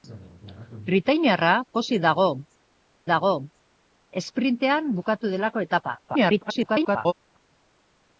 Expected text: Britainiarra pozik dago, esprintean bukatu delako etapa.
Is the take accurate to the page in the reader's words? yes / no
no